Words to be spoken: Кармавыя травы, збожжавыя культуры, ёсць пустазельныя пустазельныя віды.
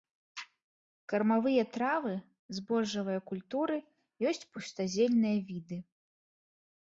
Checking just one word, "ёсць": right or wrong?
right